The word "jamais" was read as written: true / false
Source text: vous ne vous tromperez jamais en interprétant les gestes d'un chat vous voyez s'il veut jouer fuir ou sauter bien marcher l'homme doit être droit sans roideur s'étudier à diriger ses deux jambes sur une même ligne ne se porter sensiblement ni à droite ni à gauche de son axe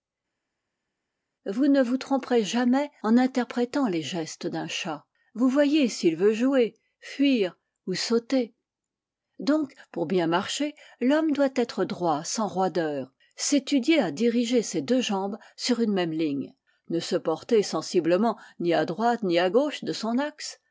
true